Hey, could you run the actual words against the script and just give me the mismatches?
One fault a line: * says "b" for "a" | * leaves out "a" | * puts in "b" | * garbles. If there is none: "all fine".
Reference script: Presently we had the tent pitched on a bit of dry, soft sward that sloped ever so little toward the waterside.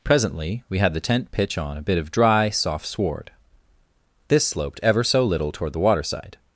* says "pitch" for "pitched"
* says "this" for "that"